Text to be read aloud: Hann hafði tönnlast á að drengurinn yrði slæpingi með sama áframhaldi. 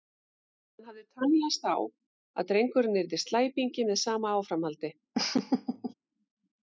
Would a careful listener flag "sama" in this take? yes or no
no